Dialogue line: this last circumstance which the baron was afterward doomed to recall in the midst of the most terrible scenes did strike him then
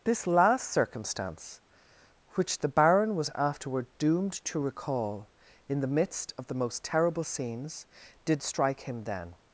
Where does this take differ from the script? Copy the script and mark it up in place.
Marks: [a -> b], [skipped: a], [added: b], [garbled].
this last circumstance which the baron was afterward doomed to recall in the midst of the most terrible scenes did strike him then